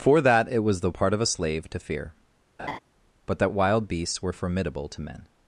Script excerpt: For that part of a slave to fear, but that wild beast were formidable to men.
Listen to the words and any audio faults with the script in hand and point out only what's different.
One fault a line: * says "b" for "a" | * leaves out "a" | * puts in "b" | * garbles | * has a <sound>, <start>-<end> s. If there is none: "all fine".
* puts in "it was the"
* has a laugh, 2.6-2.8 s
* says "beasts" for "beast"